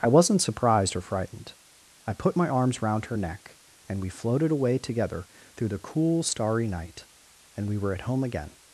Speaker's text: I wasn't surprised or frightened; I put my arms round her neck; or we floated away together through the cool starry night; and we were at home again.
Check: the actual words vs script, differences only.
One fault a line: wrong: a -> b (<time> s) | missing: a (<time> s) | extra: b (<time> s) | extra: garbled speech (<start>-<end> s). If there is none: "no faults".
wrong: or -> and (3.9 s)